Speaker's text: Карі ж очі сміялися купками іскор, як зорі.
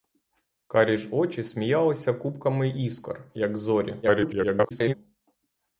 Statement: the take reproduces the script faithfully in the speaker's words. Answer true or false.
false